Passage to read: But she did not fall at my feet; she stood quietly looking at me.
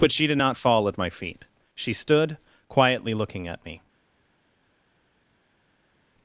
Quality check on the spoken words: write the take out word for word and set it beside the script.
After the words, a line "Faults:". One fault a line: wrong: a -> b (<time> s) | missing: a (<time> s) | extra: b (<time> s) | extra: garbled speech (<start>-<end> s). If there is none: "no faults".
But she did not fall at my feet; she stood quietly looking at me.
Faults:
no faults